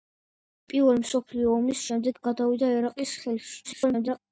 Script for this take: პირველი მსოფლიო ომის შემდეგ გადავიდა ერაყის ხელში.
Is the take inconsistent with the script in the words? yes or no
yes